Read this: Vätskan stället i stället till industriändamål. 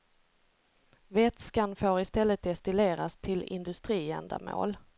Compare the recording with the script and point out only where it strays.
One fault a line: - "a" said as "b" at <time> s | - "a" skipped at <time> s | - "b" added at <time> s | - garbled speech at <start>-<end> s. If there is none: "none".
- "stället" said as "får" at 1.8 s
- "destilleras" added at 2.4 s